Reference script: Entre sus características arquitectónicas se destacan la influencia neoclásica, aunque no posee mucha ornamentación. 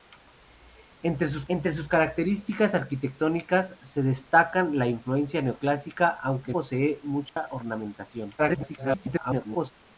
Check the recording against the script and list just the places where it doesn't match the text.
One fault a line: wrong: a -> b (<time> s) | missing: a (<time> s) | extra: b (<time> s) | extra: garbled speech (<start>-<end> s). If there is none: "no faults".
extra: entre sus (1.5 s)
missing: no (6.5 s)
extra: garbled speech (8.4-9.7 s)